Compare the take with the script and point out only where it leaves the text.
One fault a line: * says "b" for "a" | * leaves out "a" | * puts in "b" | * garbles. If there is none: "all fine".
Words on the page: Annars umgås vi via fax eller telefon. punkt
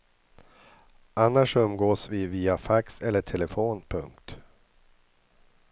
all fine